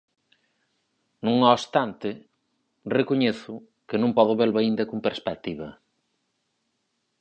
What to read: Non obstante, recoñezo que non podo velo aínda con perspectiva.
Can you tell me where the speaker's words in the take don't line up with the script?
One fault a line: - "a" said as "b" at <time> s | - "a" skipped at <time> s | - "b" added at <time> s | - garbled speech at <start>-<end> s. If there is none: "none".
none